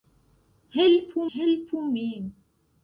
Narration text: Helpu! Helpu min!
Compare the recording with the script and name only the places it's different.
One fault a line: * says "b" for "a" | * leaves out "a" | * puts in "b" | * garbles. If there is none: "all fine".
all fine